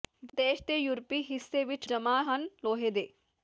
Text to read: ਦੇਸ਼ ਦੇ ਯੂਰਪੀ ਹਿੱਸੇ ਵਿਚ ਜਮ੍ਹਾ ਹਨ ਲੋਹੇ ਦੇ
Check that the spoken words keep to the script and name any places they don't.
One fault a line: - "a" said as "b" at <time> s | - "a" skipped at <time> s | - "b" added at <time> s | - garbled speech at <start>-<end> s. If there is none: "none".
none